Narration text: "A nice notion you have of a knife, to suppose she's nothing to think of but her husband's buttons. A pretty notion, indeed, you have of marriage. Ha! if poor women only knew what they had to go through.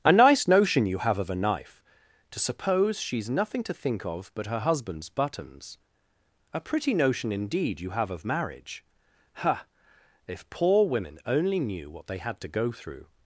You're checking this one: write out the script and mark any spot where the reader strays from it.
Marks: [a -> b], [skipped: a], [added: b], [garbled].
"A nice notion you have of a knife, to suppose she's nothing to think of but her husband's buttons. A pretty notion, indeed, you have of marriage. Ha! if poor women only knew what they had to go through.